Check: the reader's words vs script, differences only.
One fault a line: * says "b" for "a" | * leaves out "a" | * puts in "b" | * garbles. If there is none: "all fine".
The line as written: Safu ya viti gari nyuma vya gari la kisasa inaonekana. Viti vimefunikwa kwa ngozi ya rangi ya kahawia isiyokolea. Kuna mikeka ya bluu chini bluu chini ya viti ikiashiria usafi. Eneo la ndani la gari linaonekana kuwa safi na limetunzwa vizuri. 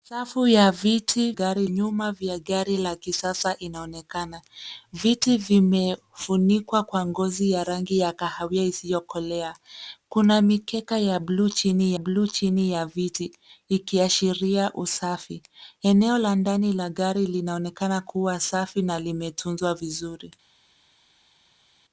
all fine